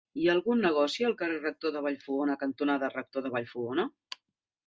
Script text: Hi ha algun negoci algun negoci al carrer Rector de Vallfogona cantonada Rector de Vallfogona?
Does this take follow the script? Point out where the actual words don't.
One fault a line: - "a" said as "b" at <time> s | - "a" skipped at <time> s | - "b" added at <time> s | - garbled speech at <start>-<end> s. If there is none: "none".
- "algun negoci" skipped at 1.1 s